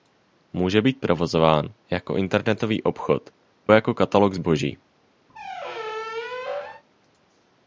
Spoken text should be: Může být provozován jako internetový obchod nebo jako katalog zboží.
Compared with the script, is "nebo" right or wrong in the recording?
wrong